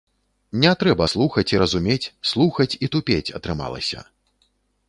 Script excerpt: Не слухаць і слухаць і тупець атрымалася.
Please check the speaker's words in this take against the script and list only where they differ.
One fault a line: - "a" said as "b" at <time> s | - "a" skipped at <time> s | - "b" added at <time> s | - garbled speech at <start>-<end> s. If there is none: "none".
- "трэба" added at 0.8 s
- "разумець" added at 1.6 s